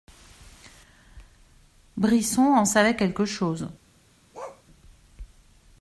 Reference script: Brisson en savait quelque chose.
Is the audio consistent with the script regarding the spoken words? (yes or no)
yes